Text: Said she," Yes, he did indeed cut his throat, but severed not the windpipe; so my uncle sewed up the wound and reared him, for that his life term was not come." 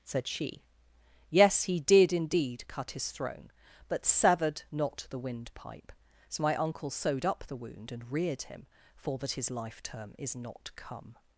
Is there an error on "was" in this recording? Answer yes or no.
yes